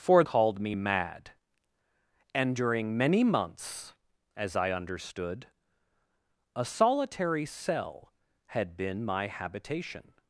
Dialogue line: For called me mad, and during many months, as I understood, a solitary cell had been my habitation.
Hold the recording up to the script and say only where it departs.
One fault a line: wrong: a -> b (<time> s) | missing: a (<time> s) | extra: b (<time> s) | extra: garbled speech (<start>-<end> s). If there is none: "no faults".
no faults